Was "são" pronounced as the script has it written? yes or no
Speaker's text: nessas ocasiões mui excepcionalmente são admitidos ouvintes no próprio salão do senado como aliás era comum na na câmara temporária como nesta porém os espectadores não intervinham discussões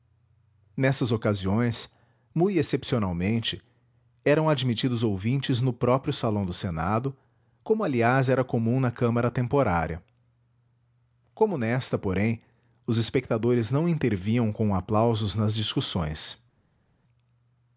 no